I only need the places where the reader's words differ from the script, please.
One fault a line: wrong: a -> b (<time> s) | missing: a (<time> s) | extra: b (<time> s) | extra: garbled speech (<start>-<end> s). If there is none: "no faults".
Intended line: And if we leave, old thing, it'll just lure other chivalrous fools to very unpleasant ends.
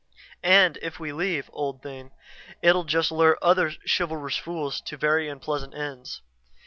no faults